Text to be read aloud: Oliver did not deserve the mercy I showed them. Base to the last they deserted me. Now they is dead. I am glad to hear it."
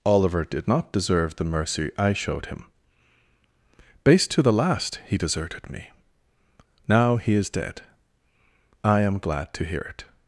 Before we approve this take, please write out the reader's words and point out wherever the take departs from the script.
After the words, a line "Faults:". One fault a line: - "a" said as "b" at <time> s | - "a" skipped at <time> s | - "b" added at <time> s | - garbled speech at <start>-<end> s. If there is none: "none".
Oliver did not deserve the mercy I showed him. Base to the last he deserted me. Now he is dead. I am glad to hear it."
Faults:
- "them" said as "him" at 2.5 s
- "they" said as "he" at 5.0 s
- "they" said as "he" at 7.2 s